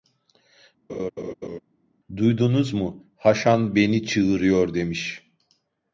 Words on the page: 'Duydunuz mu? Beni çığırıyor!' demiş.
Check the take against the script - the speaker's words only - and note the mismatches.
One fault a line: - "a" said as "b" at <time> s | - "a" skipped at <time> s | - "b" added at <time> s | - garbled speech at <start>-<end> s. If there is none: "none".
- "Haşan" added at 3.2 s